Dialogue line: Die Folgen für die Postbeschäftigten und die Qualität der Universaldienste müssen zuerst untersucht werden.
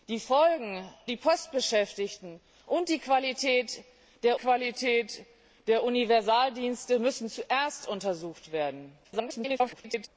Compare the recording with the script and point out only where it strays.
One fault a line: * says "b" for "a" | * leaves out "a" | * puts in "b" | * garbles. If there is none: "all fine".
* leaves out "für"
* puts in "Qualität der"
* garbles